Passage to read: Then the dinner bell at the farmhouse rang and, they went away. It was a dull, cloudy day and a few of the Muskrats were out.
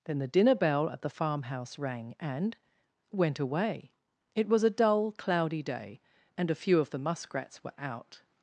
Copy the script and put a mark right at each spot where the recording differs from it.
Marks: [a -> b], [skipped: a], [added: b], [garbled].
Then the dinner bell at the farmhouse rang and, [skipped: they] went away. It was a dull, cloudy day and a few of the Muskrats were out.